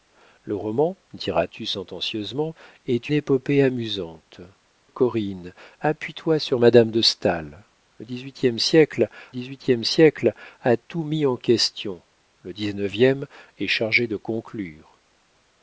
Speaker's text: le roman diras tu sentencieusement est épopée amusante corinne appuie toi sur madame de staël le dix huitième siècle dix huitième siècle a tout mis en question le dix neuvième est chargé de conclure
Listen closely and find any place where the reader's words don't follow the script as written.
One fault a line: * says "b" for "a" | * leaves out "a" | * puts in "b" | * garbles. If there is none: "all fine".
all fine